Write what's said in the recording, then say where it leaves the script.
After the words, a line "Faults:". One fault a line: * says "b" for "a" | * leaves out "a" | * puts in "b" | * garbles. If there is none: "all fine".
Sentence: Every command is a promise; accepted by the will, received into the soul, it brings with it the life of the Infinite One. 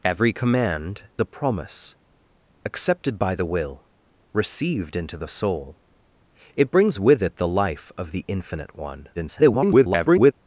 Every command a promise; accepted by the will, received into the soul, it brings with it the life of the Infinite One. [garbled]
Faults:
* leaves out "is"
* garbles